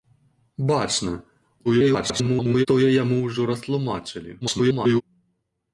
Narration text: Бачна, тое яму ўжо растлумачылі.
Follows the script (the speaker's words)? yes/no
no